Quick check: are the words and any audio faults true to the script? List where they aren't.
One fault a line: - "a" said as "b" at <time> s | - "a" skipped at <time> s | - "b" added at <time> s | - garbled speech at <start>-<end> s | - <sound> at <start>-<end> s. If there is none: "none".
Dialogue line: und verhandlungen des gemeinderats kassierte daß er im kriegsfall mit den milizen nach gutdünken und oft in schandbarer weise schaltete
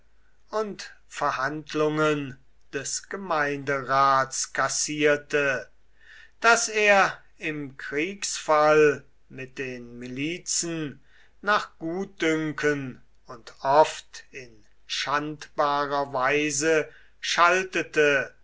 none